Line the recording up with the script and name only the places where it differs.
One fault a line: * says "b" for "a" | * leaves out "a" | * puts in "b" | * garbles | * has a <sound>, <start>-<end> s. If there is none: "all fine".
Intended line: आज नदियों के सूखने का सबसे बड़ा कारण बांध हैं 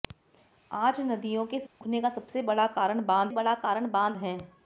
* has a dropout, 1.7-1.8 s
* puts in "बड़ा कारण बांध"